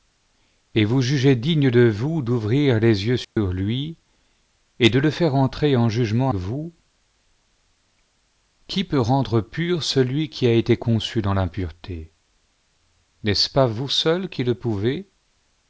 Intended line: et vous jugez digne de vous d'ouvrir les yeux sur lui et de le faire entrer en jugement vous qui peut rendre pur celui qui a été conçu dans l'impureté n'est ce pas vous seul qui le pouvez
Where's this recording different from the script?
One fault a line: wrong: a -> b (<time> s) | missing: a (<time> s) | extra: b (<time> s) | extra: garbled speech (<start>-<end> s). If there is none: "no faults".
no faults